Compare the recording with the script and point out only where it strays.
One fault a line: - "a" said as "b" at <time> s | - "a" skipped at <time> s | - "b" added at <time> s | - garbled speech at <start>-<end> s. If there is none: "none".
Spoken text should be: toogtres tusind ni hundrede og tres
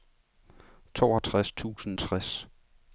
- "ni hundrede og" skipped at 2.0 s